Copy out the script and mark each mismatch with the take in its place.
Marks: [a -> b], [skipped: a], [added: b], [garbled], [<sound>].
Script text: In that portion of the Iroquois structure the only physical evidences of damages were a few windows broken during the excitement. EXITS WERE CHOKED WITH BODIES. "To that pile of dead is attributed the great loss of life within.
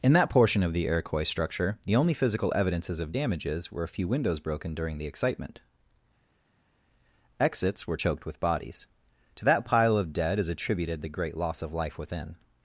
In that portion of the Iroquois structure the only physical evidences of damages were a few windows broken during the excitement. EXITS WERE CHOKED WITH BODIES. "To that pile of dead is attributed the great loss of life within.